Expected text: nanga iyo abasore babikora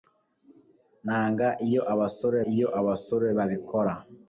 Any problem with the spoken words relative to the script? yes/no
yes